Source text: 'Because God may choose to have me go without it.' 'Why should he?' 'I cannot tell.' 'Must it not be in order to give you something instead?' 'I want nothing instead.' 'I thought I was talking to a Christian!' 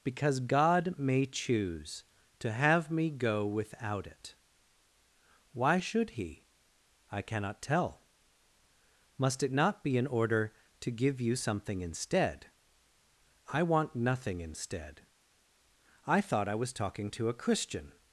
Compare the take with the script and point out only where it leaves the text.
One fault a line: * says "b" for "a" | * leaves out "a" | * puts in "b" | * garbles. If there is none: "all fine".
all fine